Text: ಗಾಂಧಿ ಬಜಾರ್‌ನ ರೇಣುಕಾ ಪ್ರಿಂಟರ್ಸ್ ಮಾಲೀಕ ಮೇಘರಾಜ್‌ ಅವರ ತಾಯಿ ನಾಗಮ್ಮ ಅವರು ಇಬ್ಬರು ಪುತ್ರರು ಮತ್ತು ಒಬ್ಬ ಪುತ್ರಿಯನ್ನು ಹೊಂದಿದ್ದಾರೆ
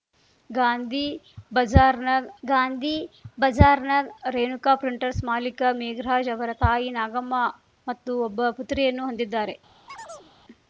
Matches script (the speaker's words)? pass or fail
fail